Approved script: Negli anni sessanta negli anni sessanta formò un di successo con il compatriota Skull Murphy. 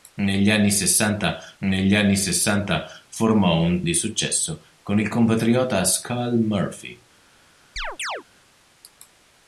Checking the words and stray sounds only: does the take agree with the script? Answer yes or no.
no